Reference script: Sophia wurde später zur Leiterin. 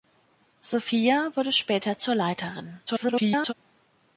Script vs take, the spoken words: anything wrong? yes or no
yes